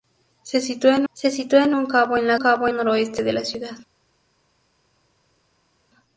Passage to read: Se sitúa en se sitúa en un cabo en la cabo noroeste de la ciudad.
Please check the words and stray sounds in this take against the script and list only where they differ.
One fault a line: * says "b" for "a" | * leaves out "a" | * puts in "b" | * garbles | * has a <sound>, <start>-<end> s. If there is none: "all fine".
all fine